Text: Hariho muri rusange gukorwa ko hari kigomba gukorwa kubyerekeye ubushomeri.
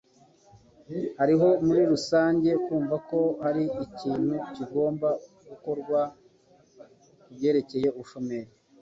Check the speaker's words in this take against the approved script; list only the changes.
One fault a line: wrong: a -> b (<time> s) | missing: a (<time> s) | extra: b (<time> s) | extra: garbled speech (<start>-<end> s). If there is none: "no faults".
wrong: gukorwa -> kumva (2.6 s)
extra: ikintu (3.8 s)